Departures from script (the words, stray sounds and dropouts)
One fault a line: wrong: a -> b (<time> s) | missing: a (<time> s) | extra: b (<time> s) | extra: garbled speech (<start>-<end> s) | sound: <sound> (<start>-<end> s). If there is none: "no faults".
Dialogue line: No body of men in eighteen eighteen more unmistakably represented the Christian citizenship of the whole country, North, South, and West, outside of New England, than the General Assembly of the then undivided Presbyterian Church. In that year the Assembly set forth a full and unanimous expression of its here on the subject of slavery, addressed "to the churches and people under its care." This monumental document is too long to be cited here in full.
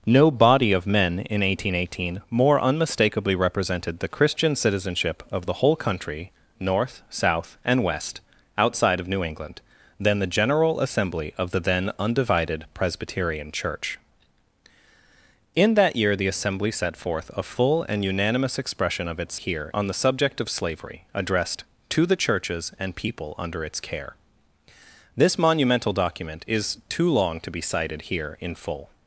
no faults